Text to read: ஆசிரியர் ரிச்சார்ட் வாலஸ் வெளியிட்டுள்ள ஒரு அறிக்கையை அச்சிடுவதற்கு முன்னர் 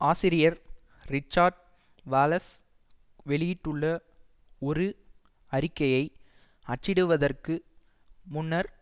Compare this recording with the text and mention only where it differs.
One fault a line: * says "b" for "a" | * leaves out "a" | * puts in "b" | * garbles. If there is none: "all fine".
all fine